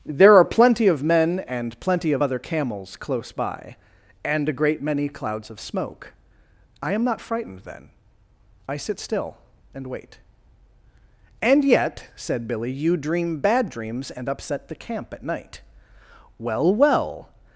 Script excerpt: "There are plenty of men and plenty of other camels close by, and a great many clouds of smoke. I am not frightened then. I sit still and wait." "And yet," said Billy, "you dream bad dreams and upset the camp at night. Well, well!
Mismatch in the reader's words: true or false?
false